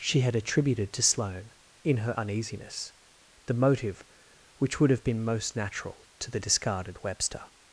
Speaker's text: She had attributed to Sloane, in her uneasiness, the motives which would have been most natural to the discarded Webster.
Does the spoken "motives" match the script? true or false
false